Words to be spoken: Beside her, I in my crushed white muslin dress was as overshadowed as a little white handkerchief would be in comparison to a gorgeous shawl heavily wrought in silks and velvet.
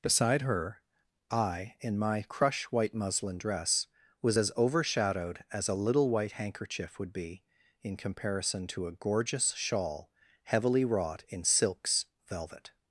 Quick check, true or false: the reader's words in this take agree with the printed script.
false